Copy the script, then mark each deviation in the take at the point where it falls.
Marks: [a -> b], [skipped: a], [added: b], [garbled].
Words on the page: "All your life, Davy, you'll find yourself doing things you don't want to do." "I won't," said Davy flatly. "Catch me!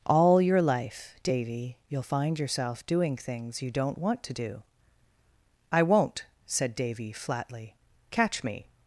"All your life, Davy, you'll find yourself doing things you don't want to do." "I won't," said Davy flatly. "Catch me!